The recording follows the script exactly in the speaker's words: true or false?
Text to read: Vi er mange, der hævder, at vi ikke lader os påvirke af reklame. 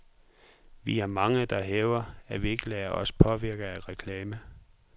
true